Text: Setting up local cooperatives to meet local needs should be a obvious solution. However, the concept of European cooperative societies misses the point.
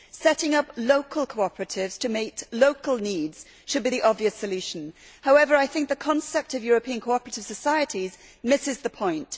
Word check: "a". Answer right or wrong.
wrong